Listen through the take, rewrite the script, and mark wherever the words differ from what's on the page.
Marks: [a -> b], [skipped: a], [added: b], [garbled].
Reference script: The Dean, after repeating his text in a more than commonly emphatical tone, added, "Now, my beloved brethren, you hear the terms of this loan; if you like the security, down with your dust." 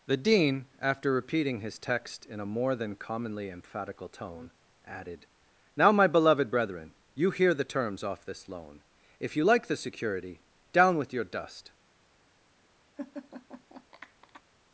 The Dean, after repeating his text in a more than commonly emphatical tone, added, "Now, my beloved brethren, you hear the terms [of -> off] this loan; if you like the security, down with your dust."